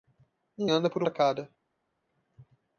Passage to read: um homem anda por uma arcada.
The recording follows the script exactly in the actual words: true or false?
false